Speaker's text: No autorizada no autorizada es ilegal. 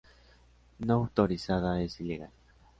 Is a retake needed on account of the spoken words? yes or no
yes